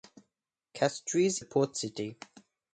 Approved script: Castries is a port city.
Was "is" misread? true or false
true